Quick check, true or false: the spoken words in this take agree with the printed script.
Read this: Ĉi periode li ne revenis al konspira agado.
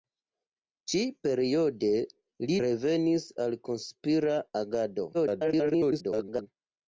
false